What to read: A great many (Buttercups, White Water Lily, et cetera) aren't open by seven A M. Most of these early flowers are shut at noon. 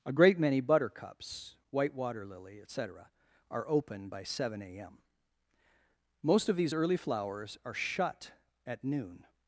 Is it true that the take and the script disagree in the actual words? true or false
true